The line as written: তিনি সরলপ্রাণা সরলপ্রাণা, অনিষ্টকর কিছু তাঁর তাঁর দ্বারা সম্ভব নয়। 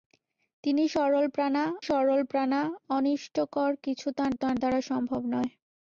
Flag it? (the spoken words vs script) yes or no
no